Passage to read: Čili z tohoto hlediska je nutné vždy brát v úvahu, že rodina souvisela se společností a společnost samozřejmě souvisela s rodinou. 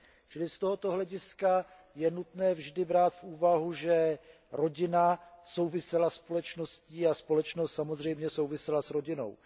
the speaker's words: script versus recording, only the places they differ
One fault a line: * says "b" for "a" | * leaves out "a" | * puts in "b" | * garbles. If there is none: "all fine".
all fine